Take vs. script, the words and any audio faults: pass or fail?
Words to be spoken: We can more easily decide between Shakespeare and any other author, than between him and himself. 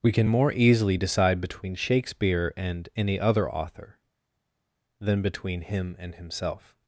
pass